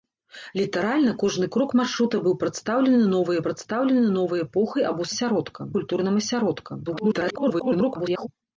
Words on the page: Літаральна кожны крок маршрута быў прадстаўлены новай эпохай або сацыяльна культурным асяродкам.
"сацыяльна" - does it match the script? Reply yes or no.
no